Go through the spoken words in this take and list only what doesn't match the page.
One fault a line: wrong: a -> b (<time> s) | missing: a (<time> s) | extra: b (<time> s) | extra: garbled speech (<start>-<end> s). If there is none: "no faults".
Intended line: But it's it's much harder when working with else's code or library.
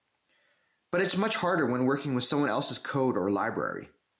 missing: it's (1.2 s)
extra: someone (2.2 s)